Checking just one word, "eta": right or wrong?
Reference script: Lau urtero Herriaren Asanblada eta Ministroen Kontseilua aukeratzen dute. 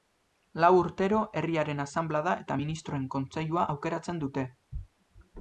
right